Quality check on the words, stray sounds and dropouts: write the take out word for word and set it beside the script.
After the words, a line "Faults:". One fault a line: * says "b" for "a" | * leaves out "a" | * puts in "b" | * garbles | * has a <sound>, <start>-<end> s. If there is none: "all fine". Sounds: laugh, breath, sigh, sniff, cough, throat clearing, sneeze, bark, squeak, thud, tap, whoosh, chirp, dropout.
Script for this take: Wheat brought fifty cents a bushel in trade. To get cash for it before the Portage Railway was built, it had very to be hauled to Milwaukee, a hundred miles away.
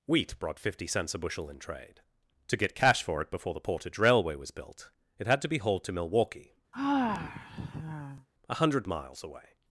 Wheat brought fifty cents a bushel in trade. To get cash for it before the Portage Railway was built, it had to be hauled to Milwaukee, a hundred miles away.
Faults:
* leaves out "very"
* has a sigh, 6.7-8.3 s